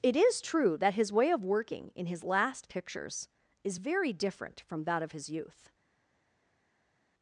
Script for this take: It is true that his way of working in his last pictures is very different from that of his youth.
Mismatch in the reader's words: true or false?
false